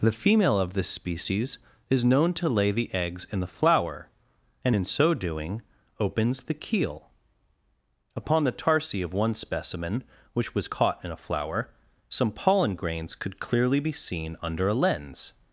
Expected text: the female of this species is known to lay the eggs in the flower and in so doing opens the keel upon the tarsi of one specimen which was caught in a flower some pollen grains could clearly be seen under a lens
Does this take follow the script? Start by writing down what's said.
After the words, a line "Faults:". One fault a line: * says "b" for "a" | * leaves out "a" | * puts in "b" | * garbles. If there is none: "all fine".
the female of this species is known to lay the eggs in the flower and in so doing opens the keel upon the tarsi of one specimen which was caught in a flower some pollen grains could clearly be seen under a lens
Faults:
all fine